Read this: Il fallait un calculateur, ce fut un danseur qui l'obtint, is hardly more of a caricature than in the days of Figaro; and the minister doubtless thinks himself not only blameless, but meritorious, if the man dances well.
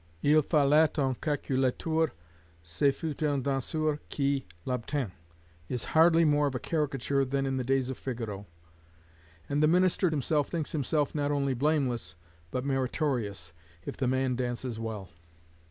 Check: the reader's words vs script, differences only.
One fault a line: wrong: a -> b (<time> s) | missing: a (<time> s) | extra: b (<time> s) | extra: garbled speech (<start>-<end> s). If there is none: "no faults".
wrong: doubtless -> himself (10.1 s)